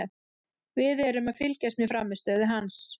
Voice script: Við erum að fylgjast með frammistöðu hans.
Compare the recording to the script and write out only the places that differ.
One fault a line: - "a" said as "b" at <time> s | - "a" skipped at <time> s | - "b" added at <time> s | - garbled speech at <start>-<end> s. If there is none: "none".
none